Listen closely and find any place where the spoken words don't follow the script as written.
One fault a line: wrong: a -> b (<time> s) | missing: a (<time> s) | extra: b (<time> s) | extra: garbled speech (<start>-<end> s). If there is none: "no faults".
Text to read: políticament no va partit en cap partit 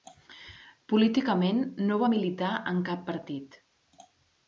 wrong: partit -> militar (2.1 s)